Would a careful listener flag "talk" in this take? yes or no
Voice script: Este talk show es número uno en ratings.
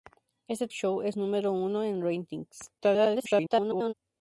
yes